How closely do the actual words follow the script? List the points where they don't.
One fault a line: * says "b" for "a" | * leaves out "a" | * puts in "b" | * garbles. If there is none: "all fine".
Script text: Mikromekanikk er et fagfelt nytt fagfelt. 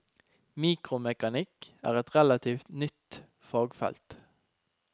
* says "relativt" for "fagfelt"